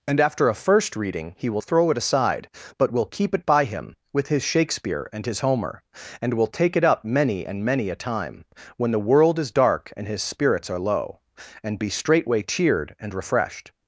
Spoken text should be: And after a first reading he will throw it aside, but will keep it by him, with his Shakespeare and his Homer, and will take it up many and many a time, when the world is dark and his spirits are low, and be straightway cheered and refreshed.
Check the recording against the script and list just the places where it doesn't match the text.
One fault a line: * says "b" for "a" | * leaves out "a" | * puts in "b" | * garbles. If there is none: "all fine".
all fine